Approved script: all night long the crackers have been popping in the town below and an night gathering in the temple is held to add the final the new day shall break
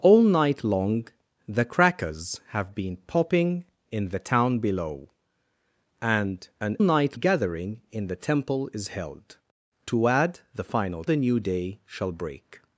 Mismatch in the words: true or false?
false